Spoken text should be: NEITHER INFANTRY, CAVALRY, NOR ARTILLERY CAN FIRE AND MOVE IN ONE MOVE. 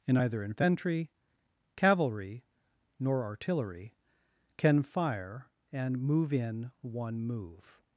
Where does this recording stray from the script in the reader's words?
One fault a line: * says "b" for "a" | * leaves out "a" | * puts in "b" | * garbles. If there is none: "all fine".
* says "In either" for "NEITHER"